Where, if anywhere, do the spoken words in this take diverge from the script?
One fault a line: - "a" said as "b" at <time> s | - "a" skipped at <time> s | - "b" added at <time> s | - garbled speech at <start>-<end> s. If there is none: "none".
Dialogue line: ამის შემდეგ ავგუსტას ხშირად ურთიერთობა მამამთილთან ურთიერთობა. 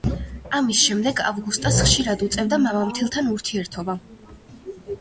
- "ურთიერთობა" said as "უწევდა" at 2.3 s